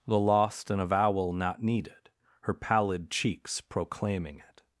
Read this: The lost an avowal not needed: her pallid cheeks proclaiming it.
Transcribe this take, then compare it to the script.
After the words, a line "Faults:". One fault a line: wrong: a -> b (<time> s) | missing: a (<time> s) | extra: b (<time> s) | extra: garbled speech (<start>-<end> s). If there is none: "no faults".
The lost an avowal not needed: her pallid cheeks proclaiming it.
Faults:
no faults